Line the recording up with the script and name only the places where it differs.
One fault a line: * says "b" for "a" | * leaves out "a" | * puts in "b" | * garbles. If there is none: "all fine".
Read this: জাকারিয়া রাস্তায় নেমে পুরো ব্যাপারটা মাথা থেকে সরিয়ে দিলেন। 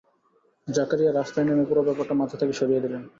all fine